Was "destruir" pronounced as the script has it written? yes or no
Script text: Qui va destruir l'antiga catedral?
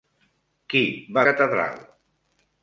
no